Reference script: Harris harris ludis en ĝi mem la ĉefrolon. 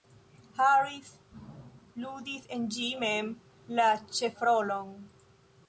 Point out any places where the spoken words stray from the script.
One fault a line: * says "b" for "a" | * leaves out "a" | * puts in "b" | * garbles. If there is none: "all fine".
* leaves out "harris"